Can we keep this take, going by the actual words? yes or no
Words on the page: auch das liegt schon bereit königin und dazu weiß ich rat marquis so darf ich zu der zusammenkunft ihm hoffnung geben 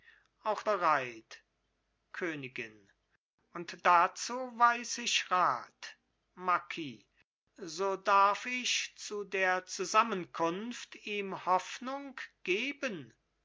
no